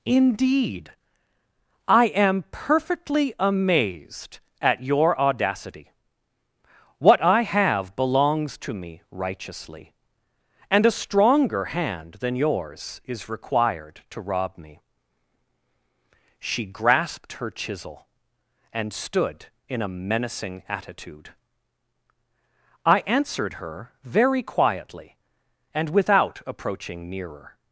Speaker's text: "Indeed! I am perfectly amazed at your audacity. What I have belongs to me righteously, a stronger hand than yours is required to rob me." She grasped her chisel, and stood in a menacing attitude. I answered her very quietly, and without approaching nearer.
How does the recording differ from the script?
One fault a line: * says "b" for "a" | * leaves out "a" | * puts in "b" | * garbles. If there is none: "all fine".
* puts in "and"